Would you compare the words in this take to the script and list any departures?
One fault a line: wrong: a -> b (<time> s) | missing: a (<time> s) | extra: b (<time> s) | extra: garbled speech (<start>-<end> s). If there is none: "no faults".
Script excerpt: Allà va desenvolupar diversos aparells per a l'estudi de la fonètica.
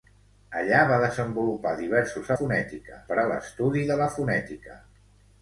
wrong: aparells -> fonètica (2.4 s)